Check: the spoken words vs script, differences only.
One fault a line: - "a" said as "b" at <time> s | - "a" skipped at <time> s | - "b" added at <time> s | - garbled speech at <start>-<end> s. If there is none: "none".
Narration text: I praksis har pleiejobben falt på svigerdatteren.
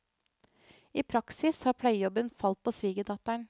none